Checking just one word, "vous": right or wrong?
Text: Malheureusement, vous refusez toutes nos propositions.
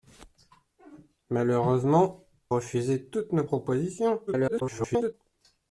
wrong